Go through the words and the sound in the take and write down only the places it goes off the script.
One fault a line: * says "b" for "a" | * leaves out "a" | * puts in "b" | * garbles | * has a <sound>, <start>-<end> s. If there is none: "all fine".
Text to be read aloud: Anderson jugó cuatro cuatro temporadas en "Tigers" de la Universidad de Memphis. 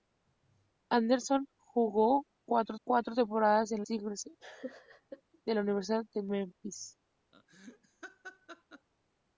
* has a laugh, 4.4-5.2 s
* has a laugh, 7.3-8.9 s